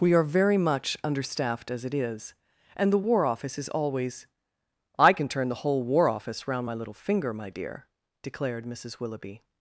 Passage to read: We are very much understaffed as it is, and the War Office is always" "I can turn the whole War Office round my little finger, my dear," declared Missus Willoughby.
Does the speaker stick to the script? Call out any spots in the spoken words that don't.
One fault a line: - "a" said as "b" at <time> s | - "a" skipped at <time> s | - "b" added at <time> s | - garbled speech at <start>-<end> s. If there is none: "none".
none